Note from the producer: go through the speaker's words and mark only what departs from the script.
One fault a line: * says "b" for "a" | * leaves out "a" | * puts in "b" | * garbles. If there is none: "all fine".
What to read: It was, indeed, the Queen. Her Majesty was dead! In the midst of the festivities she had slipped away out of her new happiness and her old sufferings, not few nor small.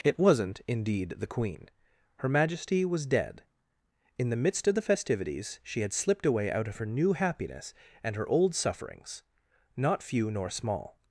* says "wasn't" for "was"